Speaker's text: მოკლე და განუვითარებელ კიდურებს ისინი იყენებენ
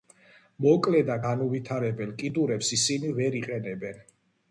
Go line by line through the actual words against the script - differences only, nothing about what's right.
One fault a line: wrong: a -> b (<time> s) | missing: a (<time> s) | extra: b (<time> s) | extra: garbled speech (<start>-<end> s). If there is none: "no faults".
extra: ვერ (3.2 s)